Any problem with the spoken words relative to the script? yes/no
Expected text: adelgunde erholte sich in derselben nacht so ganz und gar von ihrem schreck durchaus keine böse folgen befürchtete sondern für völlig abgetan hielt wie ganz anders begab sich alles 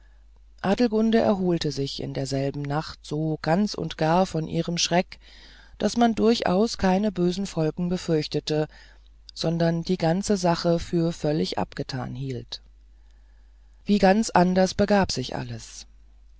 yes